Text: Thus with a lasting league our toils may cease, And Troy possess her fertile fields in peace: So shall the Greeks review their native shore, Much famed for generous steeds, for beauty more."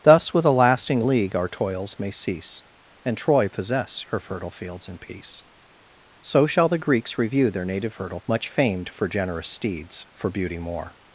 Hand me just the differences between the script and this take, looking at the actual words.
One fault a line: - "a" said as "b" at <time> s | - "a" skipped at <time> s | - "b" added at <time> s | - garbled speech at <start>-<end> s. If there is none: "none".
- "shore" said as "fertile" at 7.9 s